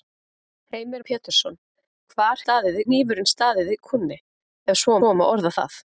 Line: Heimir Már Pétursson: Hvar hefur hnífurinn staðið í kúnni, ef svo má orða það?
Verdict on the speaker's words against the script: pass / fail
fail